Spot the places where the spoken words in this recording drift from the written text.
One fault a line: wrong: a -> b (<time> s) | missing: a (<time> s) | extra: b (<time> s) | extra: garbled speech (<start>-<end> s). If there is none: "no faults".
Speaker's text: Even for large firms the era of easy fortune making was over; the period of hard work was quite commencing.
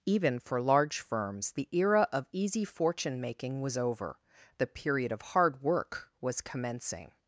missing: quite (6.4 s)